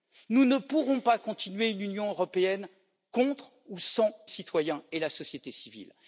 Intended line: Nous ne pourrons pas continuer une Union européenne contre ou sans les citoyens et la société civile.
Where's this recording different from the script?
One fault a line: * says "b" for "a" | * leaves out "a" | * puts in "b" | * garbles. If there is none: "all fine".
* leaves out "les"